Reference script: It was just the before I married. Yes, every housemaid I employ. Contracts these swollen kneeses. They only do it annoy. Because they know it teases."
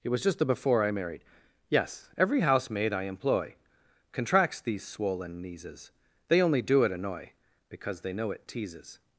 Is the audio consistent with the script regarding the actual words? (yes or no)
yes